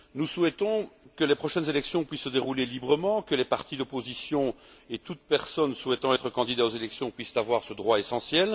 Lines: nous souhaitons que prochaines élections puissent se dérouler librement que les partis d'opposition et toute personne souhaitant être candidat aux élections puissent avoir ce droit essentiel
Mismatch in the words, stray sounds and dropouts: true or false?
true